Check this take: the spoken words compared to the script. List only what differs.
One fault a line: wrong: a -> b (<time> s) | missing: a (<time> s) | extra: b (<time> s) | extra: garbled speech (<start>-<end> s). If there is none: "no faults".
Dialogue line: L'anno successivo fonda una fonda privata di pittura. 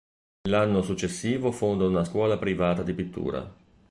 wrong: fonda -> scuola (2.0 s)